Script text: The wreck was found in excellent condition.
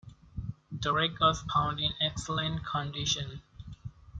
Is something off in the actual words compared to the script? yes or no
no